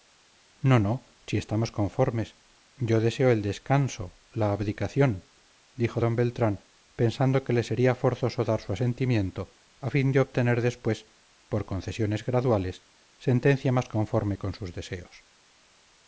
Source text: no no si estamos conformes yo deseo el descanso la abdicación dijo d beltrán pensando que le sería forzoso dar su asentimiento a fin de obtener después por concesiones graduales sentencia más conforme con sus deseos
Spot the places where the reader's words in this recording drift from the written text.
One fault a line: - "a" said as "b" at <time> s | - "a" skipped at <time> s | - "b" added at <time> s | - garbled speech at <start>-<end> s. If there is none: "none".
none